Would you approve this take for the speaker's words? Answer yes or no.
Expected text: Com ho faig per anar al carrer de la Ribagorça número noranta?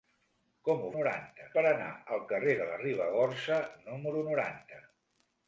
no